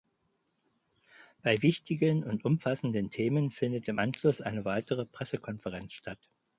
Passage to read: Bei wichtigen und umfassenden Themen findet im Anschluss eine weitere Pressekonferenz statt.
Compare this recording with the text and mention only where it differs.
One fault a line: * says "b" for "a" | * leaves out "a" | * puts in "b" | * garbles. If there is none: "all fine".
all fine